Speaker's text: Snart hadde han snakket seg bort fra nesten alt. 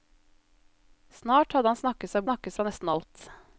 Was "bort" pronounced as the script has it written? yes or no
no